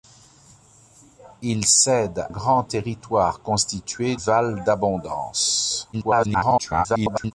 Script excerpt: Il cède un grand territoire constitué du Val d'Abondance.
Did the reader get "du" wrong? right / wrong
wrong